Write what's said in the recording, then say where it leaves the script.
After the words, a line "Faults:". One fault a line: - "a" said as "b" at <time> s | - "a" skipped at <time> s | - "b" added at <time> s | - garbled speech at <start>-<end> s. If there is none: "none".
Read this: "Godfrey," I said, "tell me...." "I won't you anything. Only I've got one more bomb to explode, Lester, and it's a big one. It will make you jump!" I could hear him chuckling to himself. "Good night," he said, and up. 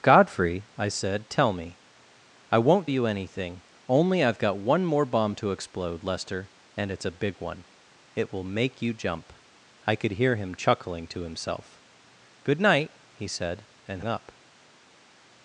"Godfrey," I said, "tell me...." "I won't you anything. Only I've got one more bomb to explode, Lester, and it's a big one. It will make you jump!" I could hear him chuckling to himself. "Good night," he said, and up.
Faults:
none